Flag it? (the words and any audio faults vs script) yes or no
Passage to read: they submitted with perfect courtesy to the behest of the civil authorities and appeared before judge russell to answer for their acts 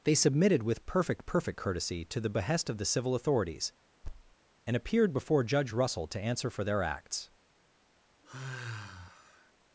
yes